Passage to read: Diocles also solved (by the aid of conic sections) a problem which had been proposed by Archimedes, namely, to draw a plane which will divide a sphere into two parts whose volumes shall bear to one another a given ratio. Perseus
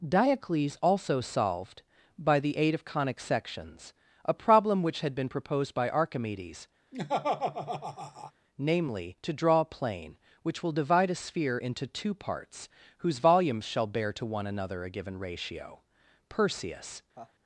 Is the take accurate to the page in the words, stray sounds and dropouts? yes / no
no